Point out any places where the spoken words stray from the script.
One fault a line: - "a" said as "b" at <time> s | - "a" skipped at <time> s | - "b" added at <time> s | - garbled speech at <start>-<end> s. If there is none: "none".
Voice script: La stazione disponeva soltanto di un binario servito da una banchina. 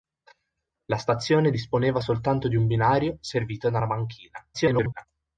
- garbled speech at 4.5-5.1 s